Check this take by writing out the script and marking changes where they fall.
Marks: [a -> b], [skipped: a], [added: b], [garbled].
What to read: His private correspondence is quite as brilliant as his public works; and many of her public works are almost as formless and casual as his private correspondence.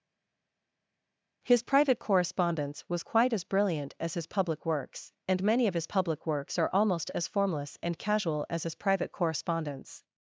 His private correspondence [is -> was] quite as brilliant as his public works; and many of [her -> his] public works are almost as formless and casual as his private correspondence.